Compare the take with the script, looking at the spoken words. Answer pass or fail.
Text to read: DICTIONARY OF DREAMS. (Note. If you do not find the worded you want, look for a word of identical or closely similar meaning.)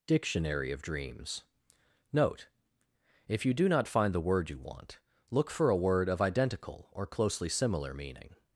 fail